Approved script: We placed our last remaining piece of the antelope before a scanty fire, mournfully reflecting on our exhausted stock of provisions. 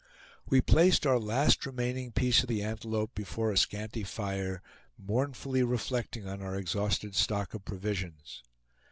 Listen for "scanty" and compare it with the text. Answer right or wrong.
right